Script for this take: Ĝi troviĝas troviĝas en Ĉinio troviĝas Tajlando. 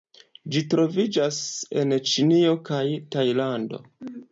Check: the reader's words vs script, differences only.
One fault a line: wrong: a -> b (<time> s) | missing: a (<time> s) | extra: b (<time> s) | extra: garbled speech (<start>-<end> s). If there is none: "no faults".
missing: troviĝas (1.4 s)
wrong: troviĝas -> kaj (2.7 s)